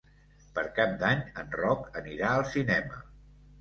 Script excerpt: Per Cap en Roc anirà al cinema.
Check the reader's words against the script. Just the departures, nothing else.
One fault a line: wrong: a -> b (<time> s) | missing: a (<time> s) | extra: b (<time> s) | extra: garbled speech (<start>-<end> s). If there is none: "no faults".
extra: d'Any (1.0 s)